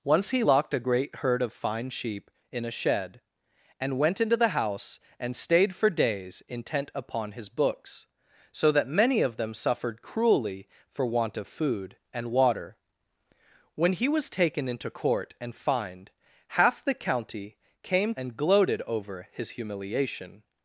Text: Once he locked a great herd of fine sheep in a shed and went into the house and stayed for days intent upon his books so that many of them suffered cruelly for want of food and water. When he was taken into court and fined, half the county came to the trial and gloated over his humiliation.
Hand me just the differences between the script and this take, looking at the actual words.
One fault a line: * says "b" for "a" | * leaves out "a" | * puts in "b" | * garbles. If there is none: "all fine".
* leaves out "to the trial"